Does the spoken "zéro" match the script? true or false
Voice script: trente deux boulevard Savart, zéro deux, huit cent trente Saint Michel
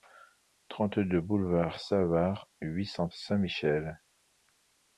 false